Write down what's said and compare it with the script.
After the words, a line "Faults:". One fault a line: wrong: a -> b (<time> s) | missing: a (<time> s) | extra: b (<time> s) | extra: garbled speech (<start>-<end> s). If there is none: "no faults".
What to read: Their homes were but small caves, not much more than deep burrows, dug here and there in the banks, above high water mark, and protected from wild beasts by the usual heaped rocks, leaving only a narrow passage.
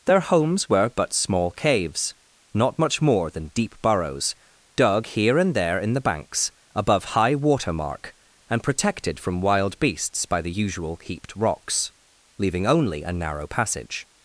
Their homes were but small caves, not much more than deep burrows, dug here and there in the banks, above high water mark, and protected from wild beasts by the usual heaped rocks, leaving only a narrow passage.
Faults:
no faults